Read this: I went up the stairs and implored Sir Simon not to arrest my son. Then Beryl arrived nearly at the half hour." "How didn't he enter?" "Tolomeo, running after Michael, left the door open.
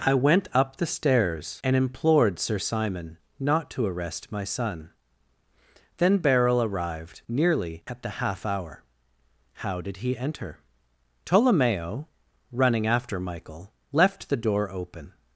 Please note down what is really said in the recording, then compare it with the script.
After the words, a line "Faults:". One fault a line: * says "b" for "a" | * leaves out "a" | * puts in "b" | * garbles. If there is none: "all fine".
I went up the stairs and implored Sir Simon not to arrest my son. Then Beryl arrived nearly at the half hour." "How did he enter?" "Tolomeo, running after Michael, left the door open.
Faults:
* says "did" for "didn't"